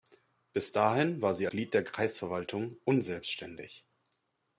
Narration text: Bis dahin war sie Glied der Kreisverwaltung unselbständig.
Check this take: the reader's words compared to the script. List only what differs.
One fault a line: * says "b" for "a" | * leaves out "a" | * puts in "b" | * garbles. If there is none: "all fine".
all fine